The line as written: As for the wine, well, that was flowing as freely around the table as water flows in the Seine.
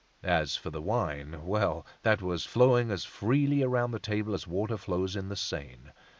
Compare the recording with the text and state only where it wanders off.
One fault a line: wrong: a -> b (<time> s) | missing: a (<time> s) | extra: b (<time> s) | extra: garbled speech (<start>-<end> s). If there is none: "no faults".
no faults